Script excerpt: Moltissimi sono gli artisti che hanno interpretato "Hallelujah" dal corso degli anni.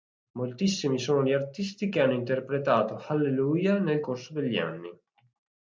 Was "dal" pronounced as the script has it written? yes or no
no